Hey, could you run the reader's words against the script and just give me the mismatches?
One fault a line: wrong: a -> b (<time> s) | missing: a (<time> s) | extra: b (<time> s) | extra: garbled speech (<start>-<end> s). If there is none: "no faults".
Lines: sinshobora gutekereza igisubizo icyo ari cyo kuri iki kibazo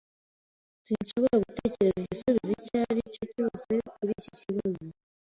extra: cyose (3.3 s)